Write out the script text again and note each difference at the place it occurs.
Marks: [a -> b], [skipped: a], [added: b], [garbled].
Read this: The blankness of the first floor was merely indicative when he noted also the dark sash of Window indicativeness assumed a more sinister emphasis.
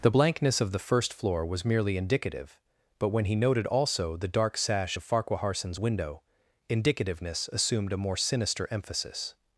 The blankness of the first floor was merely indicative [added: but] when he noted also the dark sash of [added: Farquaharson's] Window indicativeness assumed a more sinister emphasis.